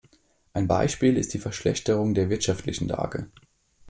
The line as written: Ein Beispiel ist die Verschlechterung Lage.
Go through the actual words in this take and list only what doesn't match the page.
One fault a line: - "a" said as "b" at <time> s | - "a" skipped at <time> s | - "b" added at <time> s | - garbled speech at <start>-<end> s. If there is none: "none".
- "der wirtschaftlichen" added at 2.1 s